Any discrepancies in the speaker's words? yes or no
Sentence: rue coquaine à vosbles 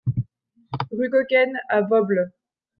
no